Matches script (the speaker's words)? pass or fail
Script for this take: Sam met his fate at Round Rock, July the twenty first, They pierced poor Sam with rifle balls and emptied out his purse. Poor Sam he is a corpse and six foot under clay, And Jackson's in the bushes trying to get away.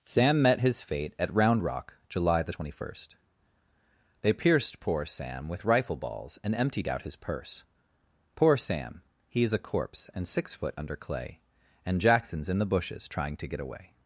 pass